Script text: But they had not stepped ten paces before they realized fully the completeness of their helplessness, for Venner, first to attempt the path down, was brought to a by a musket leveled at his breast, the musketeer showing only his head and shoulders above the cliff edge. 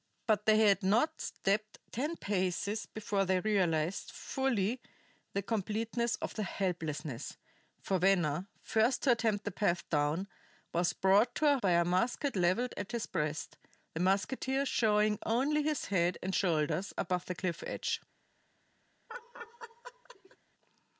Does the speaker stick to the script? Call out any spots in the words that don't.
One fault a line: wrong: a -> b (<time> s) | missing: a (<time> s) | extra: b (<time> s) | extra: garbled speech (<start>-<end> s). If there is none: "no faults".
no faults